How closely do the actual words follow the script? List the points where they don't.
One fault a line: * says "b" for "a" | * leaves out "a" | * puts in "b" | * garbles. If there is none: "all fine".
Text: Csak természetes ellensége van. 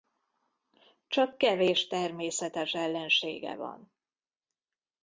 * puts in "kevés"